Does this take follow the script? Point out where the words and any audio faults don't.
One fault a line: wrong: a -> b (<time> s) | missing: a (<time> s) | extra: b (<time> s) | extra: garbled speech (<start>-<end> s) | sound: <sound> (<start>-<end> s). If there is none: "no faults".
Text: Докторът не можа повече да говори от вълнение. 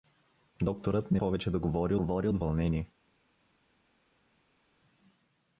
missing: можа (1.2 s)
extra: говори (1.9 s)